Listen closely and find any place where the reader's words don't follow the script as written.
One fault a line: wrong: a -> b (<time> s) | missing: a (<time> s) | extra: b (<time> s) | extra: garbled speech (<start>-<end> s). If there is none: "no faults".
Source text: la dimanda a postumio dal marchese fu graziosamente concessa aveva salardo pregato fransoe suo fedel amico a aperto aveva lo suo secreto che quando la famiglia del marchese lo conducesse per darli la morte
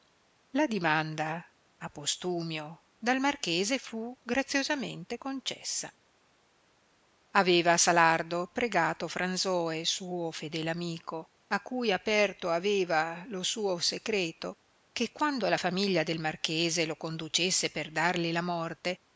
extra: cui (11.6 s)